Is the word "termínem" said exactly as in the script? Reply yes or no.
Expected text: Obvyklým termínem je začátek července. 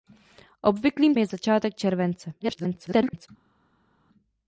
no